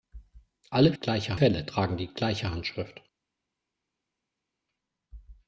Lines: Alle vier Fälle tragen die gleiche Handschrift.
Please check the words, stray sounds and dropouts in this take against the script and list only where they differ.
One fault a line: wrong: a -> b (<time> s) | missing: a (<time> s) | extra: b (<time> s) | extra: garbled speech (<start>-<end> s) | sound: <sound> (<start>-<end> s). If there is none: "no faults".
wrong: vier -> gleiche (0.9 s)